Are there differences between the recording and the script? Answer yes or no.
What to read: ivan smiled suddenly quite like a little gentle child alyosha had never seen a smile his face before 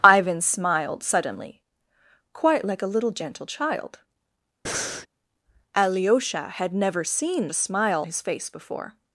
no